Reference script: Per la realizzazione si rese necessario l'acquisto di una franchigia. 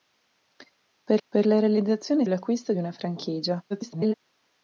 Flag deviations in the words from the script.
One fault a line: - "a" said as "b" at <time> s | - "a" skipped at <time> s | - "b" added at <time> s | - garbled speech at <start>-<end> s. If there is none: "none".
- "per" added at 1.3 s
- "si rese necessario" skipped at 2.3 s
- garbled speech at 3.7-4.1 s